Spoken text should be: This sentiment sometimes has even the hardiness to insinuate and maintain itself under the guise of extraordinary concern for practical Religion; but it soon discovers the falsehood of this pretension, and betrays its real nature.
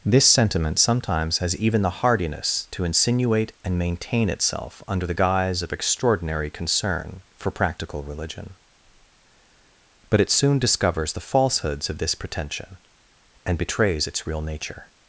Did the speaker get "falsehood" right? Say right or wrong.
wrong